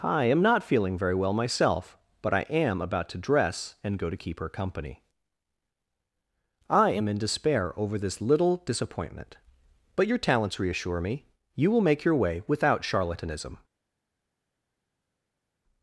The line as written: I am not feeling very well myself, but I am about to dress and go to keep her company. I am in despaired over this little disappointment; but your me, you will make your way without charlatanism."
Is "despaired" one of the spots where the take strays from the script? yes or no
yes